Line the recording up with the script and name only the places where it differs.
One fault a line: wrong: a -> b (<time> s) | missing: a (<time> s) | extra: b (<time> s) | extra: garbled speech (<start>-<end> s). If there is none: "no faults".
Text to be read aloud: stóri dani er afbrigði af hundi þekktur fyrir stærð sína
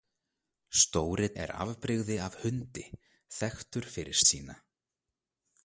missing: dani (1.3 s)
missing: stærð (4.2 s)